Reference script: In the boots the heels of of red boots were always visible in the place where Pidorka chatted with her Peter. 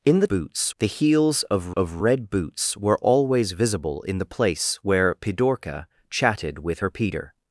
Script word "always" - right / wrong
right